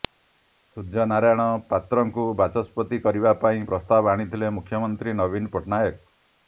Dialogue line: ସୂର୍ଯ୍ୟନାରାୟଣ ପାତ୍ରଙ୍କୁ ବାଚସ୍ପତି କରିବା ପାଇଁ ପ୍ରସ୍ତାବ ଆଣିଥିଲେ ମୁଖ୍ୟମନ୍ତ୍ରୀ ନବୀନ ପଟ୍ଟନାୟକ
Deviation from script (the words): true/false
false